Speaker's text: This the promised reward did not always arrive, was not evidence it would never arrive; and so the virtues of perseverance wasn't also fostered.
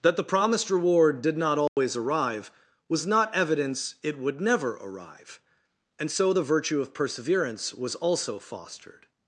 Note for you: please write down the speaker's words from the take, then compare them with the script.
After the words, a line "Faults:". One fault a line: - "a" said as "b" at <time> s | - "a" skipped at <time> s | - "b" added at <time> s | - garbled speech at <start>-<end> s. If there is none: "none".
That the promised reward did not always arrive, was not evidence it would never arrive; and so the virtue of perseverance was also fostered.
Faults:
- "This" said as "That" at 0.0 s
- "virtues" said as "virtue" at 6.4 s
- "wasn't" said as "was" at 7.7 s